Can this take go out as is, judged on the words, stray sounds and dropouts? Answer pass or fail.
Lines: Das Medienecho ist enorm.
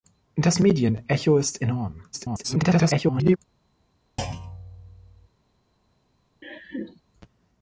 fail